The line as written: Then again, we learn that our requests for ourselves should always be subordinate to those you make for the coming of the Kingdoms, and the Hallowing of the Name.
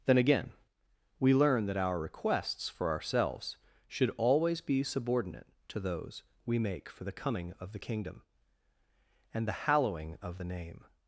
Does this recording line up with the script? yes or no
no